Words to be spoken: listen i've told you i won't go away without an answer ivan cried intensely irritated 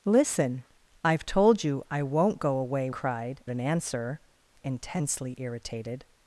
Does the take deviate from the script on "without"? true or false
true